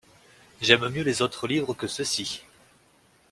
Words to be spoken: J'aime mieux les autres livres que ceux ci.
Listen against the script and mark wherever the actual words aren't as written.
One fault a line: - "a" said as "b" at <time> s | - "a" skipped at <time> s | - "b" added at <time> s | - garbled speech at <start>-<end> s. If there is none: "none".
none